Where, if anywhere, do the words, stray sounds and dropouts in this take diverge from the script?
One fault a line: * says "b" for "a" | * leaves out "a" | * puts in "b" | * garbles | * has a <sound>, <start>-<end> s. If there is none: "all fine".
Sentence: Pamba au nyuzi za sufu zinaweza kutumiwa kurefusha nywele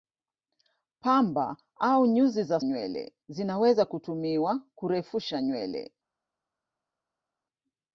* says "nywele" for "sufu"